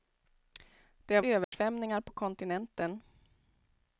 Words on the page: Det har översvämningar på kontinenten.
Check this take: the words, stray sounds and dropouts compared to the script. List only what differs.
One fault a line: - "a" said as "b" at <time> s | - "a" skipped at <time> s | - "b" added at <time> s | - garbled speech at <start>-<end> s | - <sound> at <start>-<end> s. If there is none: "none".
- dropout at 1.4-1.5 s